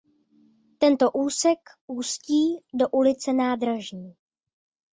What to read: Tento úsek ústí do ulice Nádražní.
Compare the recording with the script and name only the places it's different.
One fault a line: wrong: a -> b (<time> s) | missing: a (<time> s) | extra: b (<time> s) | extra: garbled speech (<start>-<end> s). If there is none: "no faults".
no faults